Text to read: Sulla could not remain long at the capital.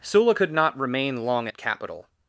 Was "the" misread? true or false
true